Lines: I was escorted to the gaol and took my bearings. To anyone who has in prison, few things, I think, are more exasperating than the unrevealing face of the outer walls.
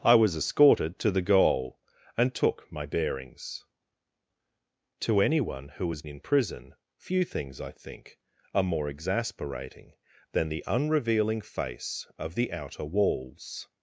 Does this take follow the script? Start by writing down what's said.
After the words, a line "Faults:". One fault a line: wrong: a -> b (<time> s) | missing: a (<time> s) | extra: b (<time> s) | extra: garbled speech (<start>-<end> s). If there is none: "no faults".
I was escorted to the gaol and took my bearings. To anyone who has in prison, few things, I think, are more exasperating than the unrevealing face of the outer walls.
Faults:
no faults